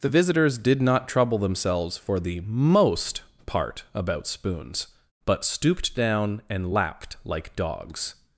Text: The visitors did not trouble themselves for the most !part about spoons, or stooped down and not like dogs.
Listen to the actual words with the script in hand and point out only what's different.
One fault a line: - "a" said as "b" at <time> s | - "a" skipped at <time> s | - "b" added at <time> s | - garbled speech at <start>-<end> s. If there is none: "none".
- "or" said as "but" at 5.2 s
- "not" said as "lapped" at 6.7 s